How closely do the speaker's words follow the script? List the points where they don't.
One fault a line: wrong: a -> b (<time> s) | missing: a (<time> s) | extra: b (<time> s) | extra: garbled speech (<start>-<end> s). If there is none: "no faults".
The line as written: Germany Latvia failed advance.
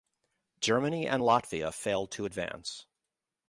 extra: and (1.1 s)
extra: to (2.1 s)